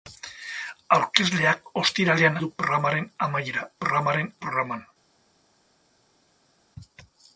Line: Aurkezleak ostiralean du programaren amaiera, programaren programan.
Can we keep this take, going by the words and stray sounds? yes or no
yes